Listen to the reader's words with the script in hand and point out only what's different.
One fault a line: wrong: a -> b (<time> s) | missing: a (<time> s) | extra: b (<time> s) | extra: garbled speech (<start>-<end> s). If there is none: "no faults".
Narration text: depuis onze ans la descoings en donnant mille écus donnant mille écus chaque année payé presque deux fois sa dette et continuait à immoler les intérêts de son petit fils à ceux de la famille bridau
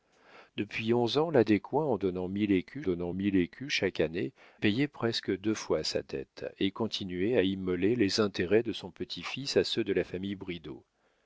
no faults